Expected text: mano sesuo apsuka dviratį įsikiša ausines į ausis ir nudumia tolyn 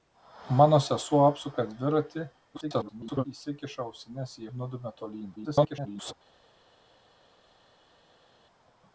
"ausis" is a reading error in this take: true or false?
true